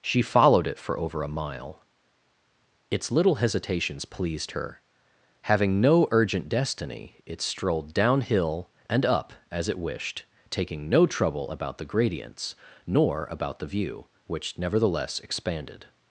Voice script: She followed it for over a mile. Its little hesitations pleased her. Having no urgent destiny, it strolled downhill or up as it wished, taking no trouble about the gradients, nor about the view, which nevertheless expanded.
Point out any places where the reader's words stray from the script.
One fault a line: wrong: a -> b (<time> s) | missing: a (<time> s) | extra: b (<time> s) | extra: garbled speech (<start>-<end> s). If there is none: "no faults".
wrong: or -> and (8.9 s)